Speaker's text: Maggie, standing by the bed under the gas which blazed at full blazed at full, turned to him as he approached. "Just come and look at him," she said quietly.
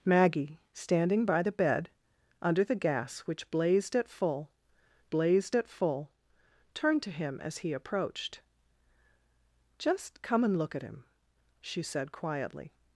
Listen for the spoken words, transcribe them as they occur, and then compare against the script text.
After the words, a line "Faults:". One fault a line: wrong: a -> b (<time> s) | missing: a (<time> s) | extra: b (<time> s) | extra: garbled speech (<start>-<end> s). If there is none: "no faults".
Maggie, standing by the bed under the gas which blazed at full blazed at full, turned to him as he approached. "Just come and look at him," she said quietly.
Faults:
no faults